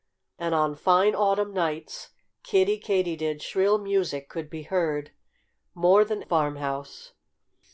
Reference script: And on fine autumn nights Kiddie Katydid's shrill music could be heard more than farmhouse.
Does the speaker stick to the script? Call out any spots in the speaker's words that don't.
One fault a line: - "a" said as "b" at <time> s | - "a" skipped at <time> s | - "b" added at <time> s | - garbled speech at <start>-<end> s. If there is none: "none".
none